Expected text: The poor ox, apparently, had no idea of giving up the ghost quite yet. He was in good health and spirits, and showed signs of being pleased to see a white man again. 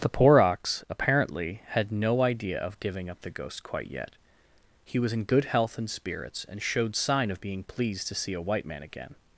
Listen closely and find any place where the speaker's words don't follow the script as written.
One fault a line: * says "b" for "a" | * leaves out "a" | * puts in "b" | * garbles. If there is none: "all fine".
* says "sign" for "signs"